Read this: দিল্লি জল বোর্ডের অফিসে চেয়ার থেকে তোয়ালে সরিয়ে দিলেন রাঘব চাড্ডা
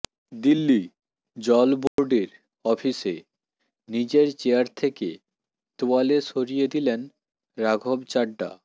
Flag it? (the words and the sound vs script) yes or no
yes